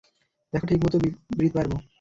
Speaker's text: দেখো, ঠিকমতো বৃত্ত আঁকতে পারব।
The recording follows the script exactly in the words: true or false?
false